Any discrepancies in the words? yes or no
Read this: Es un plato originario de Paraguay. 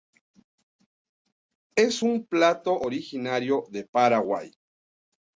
no